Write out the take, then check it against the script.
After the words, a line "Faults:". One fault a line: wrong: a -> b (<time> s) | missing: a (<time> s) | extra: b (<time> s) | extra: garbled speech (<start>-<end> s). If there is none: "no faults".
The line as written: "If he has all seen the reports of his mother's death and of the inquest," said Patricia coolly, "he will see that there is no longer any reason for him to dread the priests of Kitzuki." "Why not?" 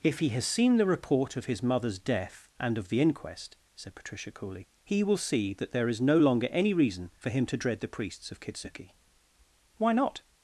"If he has seen the report of his mother's death and of the inquest," said Patricia coolly, "he will see that there is no longer any reason for him to dread the priests of Kitzuki." "Why not?"
Faults:
missing: all (0.5 s)
wrong: reports -> report (0.8 s)